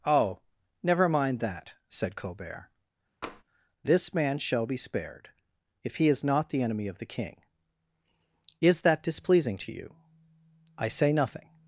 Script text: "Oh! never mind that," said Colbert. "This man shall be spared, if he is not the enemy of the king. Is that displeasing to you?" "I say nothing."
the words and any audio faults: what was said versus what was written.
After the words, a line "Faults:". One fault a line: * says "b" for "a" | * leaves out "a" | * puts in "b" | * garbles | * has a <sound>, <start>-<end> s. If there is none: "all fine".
"Oh! never mind that," said Colbert. "This man shall be spared, if he is not the enemy of the king. Is that displeasing to you?" "I say nothing."
Faults:
* has a tap, 3.2-3.4 s